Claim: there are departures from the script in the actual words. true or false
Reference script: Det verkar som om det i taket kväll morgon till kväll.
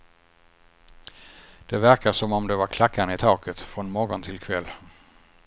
true